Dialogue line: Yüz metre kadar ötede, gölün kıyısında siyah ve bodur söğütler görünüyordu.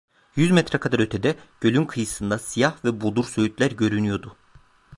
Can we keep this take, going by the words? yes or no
yes